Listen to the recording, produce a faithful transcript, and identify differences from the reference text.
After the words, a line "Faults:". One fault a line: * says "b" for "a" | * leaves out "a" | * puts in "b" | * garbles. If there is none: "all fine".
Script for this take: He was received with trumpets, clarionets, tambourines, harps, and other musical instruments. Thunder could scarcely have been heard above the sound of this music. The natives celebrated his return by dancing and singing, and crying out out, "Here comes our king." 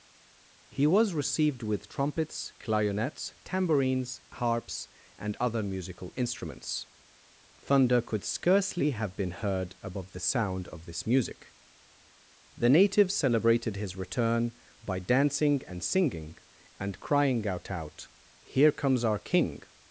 He was received with trumpets, clarionets, tambourines, harps, and other musical instruments. Thunder could scarcely have been heard above the sound of this music. The natives celebrated his return by dancing and singing, and crying out out, "Here comes our king."
Faults:
all fine